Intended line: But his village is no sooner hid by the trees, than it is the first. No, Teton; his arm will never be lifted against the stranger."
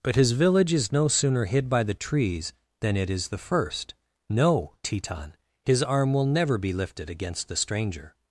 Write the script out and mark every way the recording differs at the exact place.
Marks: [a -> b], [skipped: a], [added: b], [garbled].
But his village is no sooner hid by the trees, than it is the first. No, Teton; his arm will never be lifted against the stranger."